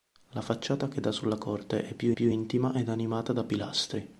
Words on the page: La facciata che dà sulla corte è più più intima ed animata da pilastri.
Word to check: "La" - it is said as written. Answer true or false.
true